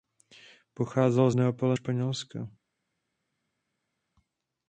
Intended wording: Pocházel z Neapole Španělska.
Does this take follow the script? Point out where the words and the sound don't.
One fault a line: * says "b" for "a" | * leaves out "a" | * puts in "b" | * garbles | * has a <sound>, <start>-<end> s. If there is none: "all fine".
all fine